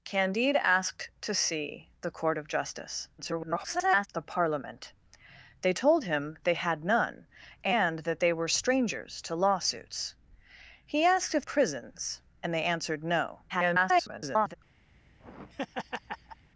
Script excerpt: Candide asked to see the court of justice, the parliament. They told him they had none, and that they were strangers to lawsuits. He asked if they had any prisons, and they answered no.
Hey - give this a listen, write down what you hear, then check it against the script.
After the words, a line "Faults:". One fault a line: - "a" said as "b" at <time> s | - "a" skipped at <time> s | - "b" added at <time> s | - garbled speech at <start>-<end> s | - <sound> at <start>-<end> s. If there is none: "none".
Candide asked to see the court of justice, [garbled] the parliament. They told him they had none, and that they were strangers to lawsuits. He asked if prisons, and they answered no. [garbled]
Faults:
- garbled speech at 3.2-4.1 s
- "they had any" skipped at 11.4 s
- garbled speech at 13.5-14.5 s
- laugh at 14.9-16.5 s